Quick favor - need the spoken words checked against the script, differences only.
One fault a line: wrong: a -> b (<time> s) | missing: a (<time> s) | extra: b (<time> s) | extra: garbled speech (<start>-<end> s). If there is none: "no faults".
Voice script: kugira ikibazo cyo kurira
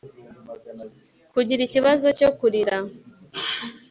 no faults